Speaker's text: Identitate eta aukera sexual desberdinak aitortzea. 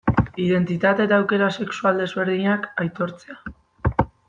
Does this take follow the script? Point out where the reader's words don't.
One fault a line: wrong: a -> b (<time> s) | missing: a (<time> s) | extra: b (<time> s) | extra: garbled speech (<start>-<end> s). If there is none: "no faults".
no faults